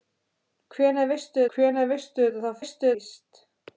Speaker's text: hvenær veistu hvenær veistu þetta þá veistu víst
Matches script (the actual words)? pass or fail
pass